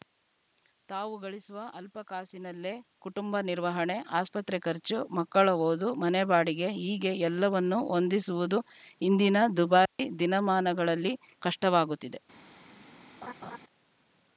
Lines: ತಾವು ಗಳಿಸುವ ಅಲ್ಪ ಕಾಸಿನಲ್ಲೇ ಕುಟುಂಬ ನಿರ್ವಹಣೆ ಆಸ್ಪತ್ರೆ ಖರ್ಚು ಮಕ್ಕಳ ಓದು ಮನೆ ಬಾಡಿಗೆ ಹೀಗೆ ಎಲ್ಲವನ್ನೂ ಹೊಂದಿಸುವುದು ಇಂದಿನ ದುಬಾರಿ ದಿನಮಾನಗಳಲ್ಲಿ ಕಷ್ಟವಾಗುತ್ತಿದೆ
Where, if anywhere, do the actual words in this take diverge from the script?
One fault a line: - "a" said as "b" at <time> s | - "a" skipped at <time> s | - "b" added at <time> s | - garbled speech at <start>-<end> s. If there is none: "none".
none